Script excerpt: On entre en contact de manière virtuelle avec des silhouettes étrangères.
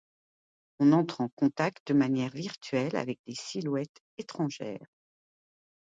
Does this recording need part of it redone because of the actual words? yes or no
no